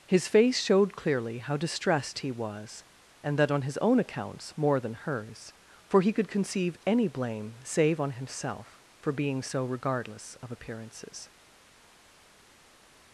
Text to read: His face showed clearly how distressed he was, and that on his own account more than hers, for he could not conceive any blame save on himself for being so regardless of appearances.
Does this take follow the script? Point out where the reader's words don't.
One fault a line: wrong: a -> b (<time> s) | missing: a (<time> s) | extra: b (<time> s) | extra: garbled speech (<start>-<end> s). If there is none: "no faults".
wrong: account -> accounts (4.0 s)
missing: not (6.3 s)